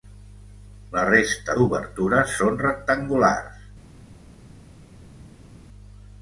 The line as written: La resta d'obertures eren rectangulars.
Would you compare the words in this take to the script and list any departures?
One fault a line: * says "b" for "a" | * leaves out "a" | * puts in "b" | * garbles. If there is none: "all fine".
* says "són" for "eren"